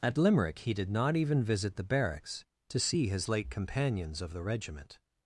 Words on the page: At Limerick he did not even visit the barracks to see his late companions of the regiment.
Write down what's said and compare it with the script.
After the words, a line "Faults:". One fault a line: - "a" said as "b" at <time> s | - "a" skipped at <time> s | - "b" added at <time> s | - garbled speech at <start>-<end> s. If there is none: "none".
At Limerick he did not even visit the barracks to see his late companions of the regiment.
Faults:
none